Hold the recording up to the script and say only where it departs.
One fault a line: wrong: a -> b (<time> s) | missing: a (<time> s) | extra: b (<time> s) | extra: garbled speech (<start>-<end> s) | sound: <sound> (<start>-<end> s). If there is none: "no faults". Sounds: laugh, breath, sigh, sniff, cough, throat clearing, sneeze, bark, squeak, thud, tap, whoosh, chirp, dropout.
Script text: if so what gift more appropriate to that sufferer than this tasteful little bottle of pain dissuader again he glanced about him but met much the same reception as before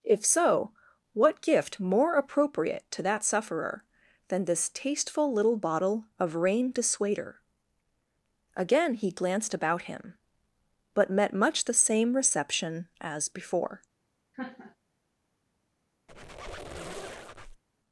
wrong: pain -> rain (6.4 s)
sound: laugh (14.3-14.8 s)
sound: squeak (16.1-17.6 s)